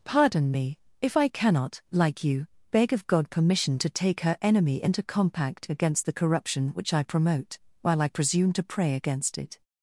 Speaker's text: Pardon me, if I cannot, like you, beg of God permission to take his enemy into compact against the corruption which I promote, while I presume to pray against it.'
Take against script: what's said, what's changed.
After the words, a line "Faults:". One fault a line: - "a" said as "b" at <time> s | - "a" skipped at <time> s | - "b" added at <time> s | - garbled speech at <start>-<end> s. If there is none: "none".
Pardon me, if I cannot, like you, beg of God permission to take her enemy into compact against the corruption which I promote, while I presume to pray against it.'
Faults:
- "his" said as "her" at 4.2 s